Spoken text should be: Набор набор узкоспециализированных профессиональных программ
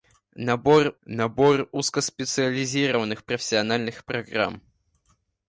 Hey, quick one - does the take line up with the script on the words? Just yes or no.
yes